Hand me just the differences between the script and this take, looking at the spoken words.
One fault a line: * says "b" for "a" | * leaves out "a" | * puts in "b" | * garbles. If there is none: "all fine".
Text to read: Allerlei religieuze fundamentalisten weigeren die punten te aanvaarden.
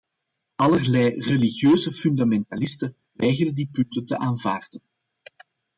all fine